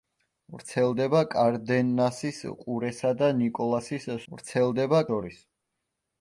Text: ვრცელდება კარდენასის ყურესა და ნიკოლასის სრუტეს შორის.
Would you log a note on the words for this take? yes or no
yes